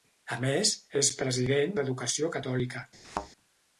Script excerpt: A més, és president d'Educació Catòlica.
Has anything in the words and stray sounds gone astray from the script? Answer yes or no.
yes